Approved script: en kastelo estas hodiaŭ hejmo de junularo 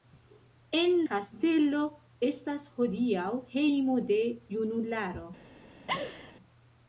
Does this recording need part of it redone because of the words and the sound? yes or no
yes